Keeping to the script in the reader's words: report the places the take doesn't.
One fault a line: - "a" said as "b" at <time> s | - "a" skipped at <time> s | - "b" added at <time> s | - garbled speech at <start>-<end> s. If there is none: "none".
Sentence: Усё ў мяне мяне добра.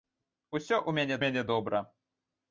none